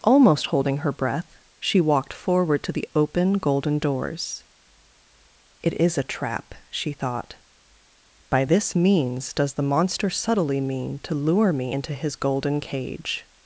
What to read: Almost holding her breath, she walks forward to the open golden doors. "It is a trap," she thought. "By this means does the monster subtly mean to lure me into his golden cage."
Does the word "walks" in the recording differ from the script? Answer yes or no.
yes